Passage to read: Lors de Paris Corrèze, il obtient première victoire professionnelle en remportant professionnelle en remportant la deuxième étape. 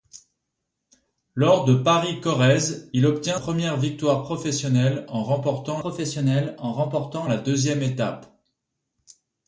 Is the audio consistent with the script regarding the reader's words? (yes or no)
yes